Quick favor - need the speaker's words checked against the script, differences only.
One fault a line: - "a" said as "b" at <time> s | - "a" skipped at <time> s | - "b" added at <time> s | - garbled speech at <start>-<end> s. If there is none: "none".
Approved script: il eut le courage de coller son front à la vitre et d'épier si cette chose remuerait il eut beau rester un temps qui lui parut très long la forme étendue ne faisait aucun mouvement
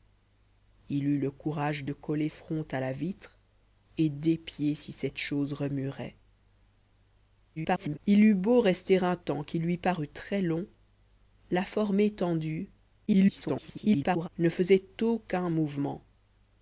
- "son" skipped at 2.3 s
- garbled speech at 7.6-8.0 s
- garbled speech at 13.1-14.3 s